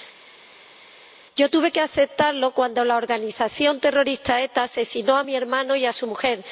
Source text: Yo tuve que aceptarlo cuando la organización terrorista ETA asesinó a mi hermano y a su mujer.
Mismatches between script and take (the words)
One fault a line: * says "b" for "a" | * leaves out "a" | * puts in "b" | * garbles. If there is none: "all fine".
all fine